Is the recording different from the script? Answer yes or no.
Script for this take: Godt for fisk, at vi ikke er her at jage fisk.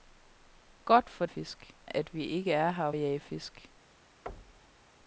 no